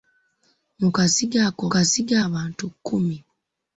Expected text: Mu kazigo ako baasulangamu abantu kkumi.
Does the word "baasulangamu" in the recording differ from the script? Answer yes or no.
yes